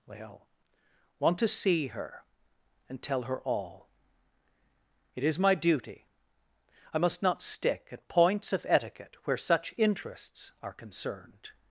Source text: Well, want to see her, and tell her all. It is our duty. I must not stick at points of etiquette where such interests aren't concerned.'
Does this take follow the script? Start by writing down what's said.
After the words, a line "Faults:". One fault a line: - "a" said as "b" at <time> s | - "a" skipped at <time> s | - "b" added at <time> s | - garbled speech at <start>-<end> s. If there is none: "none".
Well, want to see her, and tell her all. It is my duty. I must not stick at points of etiquette where such interests are concerned.'
Faults:
- "our" said as "my" at 5.4 s
- "aren't" said as "are" at 10.6 s